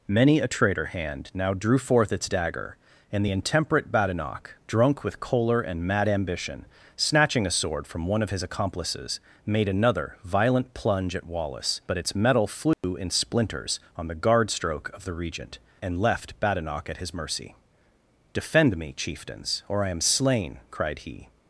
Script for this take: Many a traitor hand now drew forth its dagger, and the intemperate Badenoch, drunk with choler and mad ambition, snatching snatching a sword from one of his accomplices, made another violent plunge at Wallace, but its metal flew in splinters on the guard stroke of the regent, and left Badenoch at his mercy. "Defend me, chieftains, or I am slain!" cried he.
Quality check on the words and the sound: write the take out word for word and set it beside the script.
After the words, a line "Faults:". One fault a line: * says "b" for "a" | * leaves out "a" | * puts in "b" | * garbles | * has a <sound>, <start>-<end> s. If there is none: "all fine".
Many a traitor hand now drew forth its dagger, and the intemperate Badenoch, drunk with choler and mad ambition, snatching a sword from one of his accomplices, made another violent plunge at Wallace, but its metal flew in splinters on the guard stroke of the regent, and left Badenoch at his mercy. "Defend me, chieftains, or I am slain!" cried he.
Faults:
* leaves out "snatching"
* has a dropout, 12.7-12.8 s